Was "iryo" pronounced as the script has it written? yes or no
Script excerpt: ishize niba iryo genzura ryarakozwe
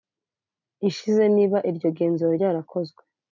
yes